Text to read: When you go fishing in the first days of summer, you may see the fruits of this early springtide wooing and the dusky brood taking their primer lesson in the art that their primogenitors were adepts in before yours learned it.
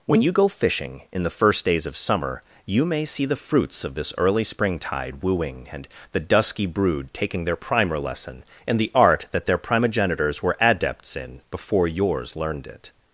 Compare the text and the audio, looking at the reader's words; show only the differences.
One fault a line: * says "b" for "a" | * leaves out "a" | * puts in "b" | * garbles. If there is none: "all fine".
all fine